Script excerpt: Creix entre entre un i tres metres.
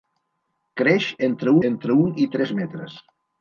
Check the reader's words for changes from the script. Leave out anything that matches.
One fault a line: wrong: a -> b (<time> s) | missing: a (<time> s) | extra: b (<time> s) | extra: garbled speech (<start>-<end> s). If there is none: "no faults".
no faults